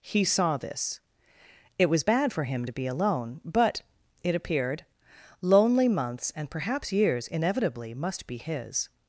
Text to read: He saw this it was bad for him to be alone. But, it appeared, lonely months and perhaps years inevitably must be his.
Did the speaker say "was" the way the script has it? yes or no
yes